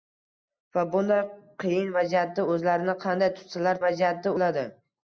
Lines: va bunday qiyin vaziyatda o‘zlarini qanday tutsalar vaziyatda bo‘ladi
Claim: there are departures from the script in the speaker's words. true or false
false